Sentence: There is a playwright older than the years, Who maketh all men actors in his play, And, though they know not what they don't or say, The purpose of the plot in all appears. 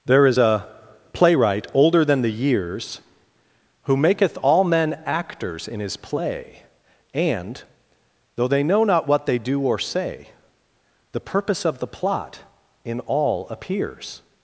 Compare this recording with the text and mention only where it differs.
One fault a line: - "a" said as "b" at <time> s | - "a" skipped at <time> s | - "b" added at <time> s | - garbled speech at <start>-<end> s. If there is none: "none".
- "don't" said as "do" at 9.4 s